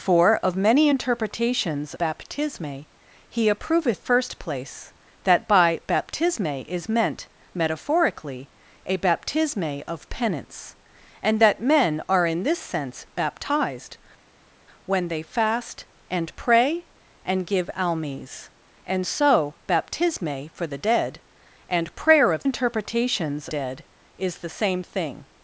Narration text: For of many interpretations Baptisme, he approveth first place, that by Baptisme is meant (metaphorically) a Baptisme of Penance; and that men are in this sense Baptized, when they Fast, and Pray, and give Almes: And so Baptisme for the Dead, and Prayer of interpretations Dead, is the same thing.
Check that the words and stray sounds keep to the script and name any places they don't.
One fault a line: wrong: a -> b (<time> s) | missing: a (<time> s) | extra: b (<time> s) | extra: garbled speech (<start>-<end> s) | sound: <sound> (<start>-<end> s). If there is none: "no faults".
no faults